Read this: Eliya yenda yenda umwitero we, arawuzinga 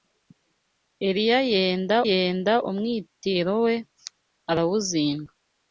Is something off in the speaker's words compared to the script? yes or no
no